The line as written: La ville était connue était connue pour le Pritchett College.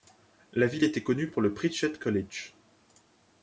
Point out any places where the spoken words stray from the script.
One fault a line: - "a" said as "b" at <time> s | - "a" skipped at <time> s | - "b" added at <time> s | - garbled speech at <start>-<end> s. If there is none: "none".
- "était connue" skipped at 1.3 s